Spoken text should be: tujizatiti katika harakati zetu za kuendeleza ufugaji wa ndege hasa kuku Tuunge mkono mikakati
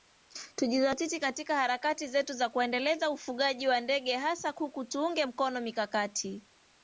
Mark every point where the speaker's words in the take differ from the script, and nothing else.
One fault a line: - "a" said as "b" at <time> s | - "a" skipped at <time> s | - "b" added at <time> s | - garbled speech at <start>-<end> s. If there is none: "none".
none